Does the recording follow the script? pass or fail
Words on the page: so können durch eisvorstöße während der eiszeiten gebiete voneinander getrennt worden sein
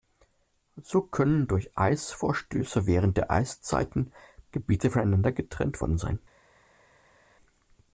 pass